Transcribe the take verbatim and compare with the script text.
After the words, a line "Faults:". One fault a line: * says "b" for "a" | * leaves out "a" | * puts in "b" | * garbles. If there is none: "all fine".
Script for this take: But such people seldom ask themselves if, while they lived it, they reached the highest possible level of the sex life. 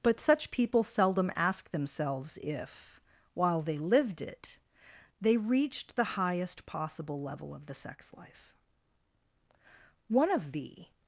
But such people seldom ask themselves if, while they lived it, they reached the highest possible level of the sex life. One of the
Faults:
* puts in "One of the"